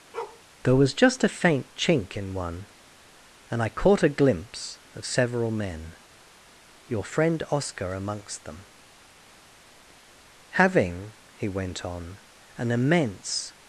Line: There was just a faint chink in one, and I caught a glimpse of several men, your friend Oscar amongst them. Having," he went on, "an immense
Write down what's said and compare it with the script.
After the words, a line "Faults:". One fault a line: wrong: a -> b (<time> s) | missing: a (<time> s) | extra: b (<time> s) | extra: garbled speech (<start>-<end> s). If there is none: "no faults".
There was just a faint chink in one, and I caught a glimpse of several men, your friend Oscar amongst them. Having," he went on, "an immense
Faults:
no faults